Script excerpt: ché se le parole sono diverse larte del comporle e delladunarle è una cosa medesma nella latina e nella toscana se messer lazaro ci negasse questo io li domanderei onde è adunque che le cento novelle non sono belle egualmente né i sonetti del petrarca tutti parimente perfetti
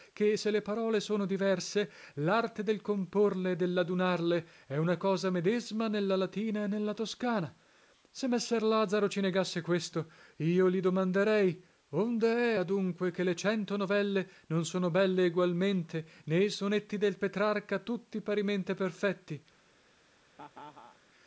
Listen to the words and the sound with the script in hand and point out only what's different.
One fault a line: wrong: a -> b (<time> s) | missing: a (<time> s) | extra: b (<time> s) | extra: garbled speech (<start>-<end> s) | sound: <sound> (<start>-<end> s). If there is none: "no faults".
sound: laugh (20.3-21.0 s)